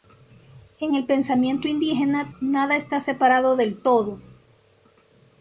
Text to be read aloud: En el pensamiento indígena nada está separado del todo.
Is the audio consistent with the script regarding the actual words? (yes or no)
yes